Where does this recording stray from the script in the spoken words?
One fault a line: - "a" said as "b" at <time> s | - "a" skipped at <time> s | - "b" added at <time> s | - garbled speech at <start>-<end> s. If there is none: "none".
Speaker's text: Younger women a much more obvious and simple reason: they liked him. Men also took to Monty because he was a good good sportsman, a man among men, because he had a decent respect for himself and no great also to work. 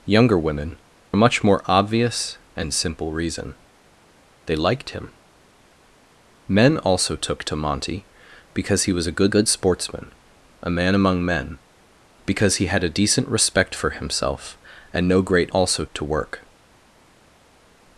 none